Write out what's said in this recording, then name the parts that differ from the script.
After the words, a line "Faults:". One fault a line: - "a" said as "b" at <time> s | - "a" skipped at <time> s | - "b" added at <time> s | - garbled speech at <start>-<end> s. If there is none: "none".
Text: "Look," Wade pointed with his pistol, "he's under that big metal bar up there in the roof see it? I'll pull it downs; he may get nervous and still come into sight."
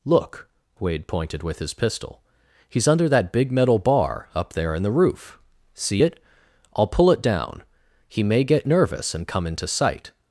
"Look," Wade pointed with his pistol, "he's under that big metal bar up there in the roof see it? I'll pull it down; he may get nervous and come into sight."
Faults:
- "downs" said as "down" at 7.2 s
- "still" skipped at 9.3 s